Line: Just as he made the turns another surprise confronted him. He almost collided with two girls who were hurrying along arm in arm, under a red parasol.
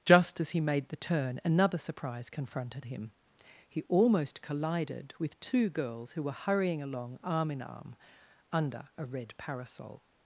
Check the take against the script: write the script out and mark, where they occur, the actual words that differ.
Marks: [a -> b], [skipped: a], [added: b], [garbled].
Just as he made the [turns -> turn] another surprise confronted him. He almost collided with two girls who were hurrying along arm in arm, under a red parasol.